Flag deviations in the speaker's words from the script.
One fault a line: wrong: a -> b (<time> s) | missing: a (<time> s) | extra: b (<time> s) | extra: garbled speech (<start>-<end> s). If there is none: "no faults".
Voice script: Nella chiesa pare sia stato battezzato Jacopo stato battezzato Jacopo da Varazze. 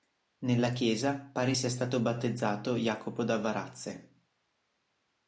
missing: stato battezzato Jacopo (3.3 s)